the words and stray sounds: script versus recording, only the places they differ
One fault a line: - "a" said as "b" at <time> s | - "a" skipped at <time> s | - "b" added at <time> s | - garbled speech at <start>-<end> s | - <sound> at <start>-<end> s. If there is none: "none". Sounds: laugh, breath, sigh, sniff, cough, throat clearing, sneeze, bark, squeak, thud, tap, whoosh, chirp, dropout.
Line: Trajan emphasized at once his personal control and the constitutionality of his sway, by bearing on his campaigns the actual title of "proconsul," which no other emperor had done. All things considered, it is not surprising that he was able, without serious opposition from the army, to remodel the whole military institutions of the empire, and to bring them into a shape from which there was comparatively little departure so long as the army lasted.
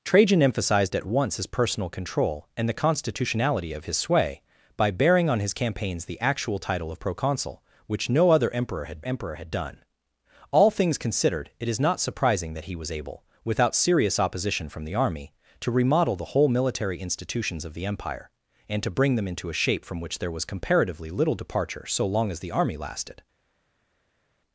- "emperor had" added at 9.0 s